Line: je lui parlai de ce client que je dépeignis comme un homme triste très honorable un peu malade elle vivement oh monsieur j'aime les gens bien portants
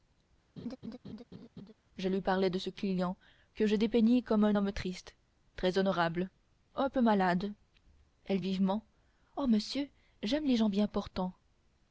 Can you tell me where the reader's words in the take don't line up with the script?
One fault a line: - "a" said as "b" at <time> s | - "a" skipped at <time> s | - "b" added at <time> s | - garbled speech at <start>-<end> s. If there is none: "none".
none